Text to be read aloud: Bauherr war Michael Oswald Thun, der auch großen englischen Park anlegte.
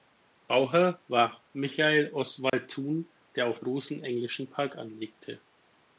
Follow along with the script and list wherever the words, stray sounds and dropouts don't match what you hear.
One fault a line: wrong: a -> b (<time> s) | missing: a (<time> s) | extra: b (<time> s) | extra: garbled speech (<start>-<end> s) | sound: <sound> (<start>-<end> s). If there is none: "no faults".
sound: dropout (2.5-2.5 s)